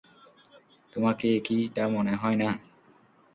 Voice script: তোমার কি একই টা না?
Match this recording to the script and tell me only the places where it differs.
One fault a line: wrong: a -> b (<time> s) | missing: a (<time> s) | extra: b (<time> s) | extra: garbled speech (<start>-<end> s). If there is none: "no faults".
extra: মনে হয় (1.9 s)